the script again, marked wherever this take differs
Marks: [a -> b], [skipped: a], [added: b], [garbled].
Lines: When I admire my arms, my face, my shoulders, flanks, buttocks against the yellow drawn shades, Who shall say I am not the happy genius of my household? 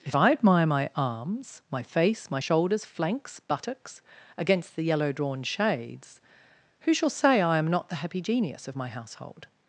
[When -> If] I admire my arms, my face, my shoulders, flanks, buttocks against the yellow drawn shades, Who shall say I am not the happy genius of my household?